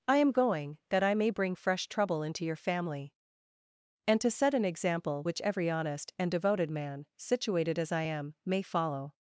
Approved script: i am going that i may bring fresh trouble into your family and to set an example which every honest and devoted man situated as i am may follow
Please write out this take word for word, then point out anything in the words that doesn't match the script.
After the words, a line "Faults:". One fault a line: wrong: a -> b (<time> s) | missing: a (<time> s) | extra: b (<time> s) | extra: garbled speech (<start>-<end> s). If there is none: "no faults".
i am going that i may bring fresh trouble into your family and to set an example which every honest and devoted man situated as i am may follow
Faults:
no faults